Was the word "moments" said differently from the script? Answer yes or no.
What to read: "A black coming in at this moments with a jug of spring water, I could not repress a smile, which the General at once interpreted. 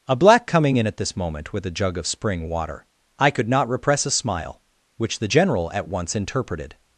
yes